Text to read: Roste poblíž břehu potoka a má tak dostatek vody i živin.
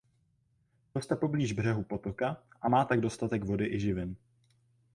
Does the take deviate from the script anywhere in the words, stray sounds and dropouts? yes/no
no